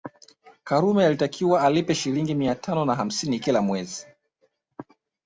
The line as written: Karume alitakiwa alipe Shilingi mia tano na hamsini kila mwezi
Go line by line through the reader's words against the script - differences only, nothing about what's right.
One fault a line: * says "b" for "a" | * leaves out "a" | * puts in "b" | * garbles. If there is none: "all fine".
all fine